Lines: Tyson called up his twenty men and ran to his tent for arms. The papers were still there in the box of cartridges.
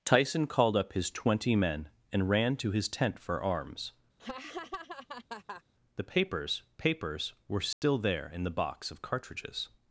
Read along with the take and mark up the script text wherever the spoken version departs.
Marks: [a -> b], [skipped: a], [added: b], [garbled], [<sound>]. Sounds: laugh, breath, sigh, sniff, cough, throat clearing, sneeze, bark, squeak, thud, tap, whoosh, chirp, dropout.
Tyson called up his twenty men and ran to his tent for arms. [laugh] The papers [added: papers] were still [dropout] there in the box of cartridges.